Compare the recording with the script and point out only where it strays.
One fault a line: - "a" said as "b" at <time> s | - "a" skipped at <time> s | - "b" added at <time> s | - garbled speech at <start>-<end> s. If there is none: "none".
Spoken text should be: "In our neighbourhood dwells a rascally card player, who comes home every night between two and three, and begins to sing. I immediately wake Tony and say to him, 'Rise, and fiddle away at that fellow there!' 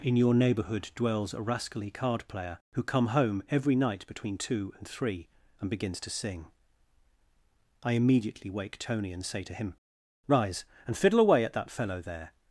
- "our" said as "your" at 0.1 s
- "comes" said as "come" at 2.8 s